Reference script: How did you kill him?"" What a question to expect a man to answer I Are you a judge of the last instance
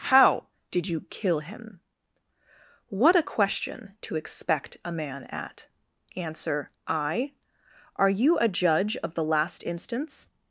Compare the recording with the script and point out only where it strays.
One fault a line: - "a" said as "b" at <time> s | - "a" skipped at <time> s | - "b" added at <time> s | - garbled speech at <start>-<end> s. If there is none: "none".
- "to" said as "at" at 5.2 s